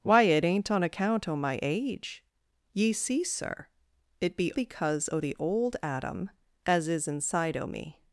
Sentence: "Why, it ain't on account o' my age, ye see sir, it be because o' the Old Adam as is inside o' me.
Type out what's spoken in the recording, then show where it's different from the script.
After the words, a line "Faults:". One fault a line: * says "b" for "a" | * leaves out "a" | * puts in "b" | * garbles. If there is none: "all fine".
"Why, it ain't on account o' my age, ye see sir, it be because o' the Old Adam as is inside o' me.
Faults:
all fine